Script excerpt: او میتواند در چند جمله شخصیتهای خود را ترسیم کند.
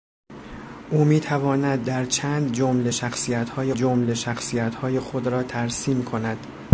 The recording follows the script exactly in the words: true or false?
false